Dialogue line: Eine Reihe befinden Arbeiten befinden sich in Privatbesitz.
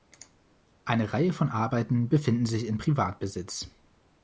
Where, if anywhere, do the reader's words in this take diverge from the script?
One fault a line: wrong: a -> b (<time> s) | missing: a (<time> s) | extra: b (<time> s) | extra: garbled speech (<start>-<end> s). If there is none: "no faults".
wrong: befinden -> von (1.3 s)